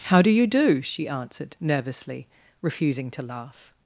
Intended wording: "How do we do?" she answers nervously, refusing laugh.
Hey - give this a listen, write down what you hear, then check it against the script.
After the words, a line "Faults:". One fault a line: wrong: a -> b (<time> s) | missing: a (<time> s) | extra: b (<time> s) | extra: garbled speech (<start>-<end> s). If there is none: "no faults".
"How do you do?" she answered nervously, refusing to laugh.
Faults:
wrong: we -> you (0.3 s)
wrong: answers -> answered (1.1 s)
extra: to (3.1 s)